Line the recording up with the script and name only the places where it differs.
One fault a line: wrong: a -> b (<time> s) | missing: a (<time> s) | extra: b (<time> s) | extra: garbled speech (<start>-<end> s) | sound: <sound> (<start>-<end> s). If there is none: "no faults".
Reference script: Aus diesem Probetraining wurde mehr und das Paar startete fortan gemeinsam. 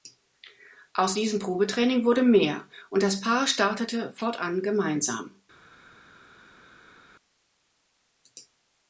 no faults